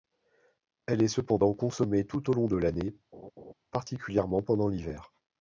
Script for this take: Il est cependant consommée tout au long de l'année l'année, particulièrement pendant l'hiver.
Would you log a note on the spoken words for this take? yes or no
yes